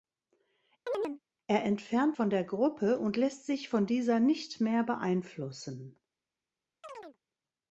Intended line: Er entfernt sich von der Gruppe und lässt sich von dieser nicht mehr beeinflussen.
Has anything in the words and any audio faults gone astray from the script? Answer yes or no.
yes